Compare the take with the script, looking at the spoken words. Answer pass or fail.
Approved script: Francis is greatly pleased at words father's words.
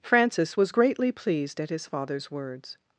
fail